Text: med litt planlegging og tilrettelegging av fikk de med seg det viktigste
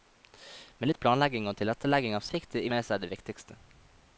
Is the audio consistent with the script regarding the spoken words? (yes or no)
yes